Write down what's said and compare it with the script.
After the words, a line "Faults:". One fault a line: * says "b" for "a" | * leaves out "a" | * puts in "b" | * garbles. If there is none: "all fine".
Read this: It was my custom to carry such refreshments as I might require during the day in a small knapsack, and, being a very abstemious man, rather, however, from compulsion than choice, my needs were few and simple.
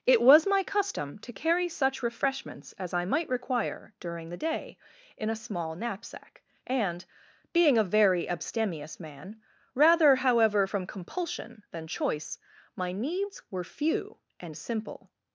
It was my custom to carry such refreshments as I might require during the day in a small knapsack, and, being a very abstemious man, rather, however, from compulsion than choice, my needs were few and simple.
Faults:
all fine